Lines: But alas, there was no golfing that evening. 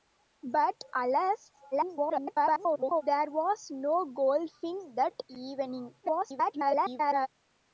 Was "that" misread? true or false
false